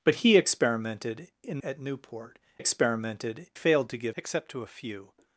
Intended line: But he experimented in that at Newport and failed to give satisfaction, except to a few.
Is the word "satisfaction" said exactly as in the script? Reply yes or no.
no